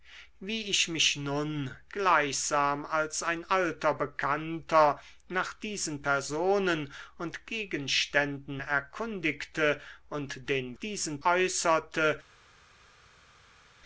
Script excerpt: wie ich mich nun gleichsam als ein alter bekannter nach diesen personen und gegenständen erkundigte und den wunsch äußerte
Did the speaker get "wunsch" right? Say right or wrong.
wrong